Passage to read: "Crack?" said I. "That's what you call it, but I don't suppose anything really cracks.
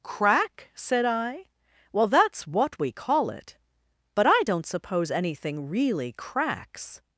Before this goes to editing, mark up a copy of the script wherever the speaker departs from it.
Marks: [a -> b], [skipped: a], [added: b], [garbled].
"Crack?" said I. [added: Well] "That's what [you -> we] call it, but I don't suppose anything really cracks.